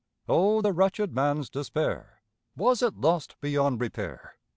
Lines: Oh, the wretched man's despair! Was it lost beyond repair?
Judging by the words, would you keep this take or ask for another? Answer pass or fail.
pass